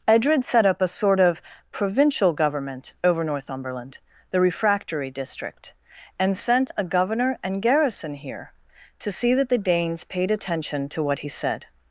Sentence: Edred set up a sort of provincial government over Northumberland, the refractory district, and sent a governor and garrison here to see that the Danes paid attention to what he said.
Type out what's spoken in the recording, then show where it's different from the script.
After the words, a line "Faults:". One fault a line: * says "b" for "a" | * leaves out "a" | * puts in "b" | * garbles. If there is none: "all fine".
Edred set up a sort of provincial government over Northumberland, the refractory district, and sent a governor and garrison here to see that the Danes paid attention to what he said.
Faults:
all fine